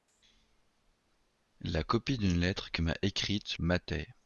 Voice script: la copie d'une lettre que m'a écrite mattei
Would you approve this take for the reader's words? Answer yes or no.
yes